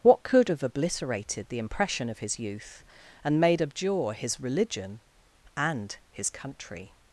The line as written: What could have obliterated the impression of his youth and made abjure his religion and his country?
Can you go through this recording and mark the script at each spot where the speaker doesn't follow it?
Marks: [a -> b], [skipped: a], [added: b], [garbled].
What could have obliterated the impression of his youth and made abjure his religion and his country?